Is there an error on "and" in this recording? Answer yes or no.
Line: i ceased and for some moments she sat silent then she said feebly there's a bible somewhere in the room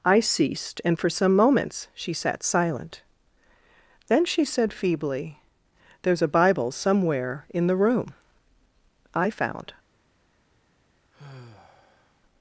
no